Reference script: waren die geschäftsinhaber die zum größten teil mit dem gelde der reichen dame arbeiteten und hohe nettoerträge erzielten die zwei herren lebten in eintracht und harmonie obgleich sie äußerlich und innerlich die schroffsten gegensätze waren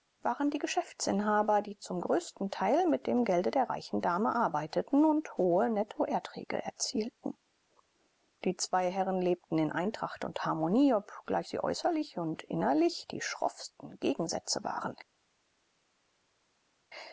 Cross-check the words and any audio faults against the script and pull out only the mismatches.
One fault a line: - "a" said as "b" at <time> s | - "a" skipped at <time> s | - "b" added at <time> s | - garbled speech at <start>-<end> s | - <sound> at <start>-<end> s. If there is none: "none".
none